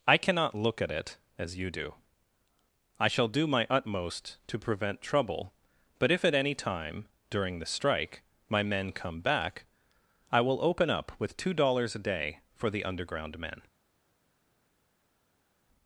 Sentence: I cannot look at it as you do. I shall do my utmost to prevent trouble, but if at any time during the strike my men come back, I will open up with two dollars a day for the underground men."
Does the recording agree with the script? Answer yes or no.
yes